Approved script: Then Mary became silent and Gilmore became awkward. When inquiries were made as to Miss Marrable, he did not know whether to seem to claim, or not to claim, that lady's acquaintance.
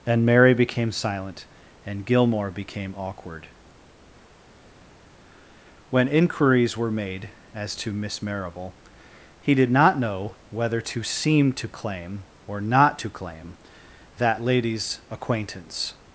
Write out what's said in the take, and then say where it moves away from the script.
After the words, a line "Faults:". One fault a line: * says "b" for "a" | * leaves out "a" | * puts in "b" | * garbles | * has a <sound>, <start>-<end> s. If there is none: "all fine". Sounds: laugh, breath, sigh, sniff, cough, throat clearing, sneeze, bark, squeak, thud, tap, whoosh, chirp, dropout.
And Mary became silent and Gilmore became awkward. When inquiries were made as to Miss Marrable, he did not know whether to seem to claim, or not to claim, that lady's acquaintance.
Faults:
* says "And" for "Then"